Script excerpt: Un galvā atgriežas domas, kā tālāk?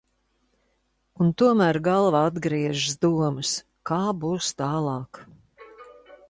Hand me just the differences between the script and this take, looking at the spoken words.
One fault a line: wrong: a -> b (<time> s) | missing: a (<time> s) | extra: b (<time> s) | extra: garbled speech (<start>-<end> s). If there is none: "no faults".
extra: tomēr (1.4 s)
extra: būs (4.2 s)